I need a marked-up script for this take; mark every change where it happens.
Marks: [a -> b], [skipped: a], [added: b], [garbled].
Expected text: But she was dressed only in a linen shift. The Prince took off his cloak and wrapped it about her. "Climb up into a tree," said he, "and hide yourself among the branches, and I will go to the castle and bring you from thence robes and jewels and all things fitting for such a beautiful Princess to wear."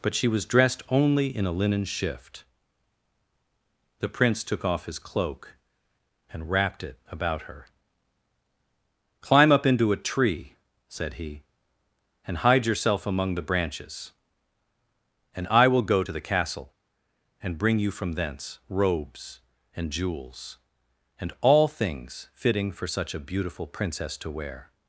But she was dressed only in a linen shift. The Prince took off his cloak and wrapped it about her. "Climb up into a tree," said he, "and hide yourself among the branches, and I will go to the castle and bring you from thence robes and jewels and all things fitting for such a beautiful Princess to wear."